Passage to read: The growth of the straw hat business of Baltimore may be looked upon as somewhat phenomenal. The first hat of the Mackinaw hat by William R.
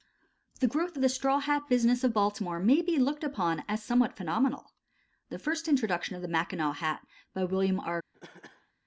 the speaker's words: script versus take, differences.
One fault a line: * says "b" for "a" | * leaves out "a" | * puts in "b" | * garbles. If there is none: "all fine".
* says "introduction" for "hat"